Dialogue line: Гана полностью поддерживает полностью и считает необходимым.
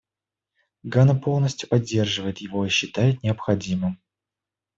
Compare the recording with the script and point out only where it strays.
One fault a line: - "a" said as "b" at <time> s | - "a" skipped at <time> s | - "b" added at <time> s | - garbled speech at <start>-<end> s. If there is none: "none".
- "полностью" said as "его" at 2.4 s